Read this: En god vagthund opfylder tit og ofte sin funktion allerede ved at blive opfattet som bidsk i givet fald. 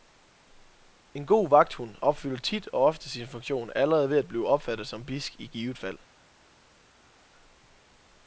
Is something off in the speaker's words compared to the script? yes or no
no